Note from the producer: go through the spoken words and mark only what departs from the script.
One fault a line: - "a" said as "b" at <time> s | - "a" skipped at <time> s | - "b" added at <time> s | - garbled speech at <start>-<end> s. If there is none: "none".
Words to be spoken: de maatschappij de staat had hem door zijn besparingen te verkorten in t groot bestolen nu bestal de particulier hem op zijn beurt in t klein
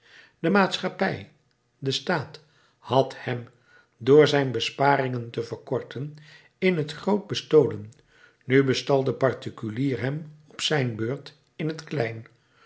none